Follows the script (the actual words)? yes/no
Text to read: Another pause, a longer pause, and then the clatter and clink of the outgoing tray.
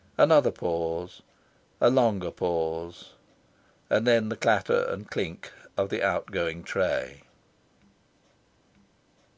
yes